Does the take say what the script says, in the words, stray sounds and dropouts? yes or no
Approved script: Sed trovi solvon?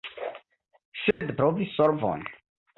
no